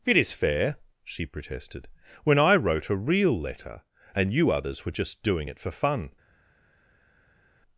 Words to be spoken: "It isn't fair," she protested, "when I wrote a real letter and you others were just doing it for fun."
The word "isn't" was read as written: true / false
false